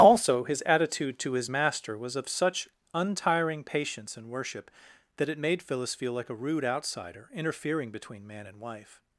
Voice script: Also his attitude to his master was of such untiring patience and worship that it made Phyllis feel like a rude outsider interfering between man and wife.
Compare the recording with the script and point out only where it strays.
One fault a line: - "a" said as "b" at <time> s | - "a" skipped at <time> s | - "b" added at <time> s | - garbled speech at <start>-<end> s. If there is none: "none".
none